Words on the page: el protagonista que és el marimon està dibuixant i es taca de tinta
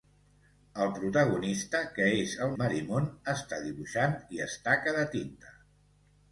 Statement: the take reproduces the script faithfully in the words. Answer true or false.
true